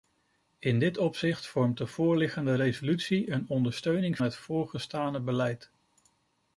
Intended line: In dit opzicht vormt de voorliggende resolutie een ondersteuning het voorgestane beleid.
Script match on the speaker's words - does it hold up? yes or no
yes